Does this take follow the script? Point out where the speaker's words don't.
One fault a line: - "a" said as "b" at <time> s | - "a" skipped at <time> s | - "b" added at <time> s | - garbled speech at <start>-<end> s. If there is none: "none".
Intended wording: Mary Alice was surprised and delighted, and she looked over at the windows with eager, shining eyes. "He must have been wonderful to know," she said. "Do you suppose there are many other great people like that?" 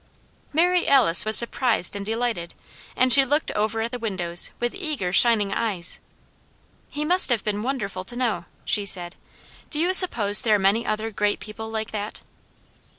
none